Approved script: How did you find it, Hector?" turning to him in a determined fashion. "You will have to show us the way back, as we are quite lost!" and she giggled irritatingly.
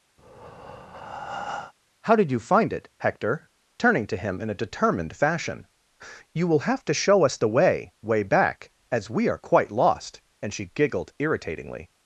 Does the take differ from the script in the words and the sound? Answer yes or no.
yes